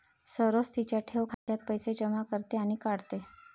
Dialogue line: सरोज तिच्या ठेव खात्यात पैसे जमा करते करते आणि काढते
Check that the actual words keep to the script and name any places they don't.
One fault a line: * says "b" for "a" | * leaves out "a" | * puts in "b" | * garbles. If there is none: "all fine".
* leaves out "करते"